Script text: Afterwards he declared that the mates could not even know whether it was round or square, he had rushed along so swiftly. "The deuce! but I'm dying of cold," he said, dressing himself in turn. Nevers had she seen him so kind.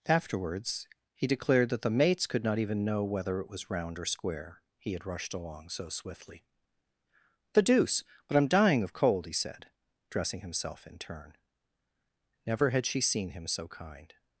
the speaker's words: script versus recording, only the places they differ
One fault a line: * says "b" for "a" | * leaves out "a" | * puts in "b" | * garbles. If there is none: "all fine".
* says "Never" for "Nevers"